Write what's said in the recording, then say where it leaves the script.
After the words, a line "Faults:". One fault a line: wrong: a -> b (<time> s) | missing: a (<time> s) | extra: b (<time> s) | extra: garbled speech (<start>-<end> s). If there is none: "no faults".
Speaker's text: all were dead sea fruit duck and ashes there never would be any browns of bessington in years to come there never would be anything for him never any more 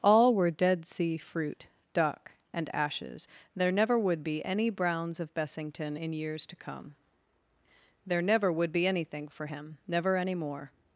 all were dead sea fruit duck and ashes there never would be any browns of bessington in years to come there never would be anything for him never any more
Faults:
no faults